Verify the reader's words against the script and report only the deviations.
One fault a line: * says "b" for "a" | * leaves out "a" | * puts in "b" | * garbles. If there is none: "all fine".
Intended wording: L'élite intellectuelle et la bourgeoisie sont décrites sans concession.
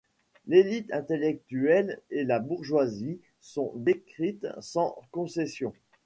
all fine